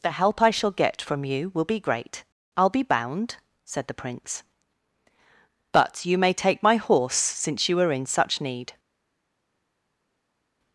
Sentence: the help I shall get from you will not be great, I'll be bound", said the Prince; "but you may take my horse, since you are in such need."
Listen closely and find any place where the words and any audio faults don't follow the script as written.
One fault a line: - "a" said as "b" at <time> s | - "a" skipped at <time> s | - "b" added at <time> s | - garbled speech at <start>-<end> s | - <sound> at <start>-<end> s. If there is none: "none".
- "not" skipped at 1.6 s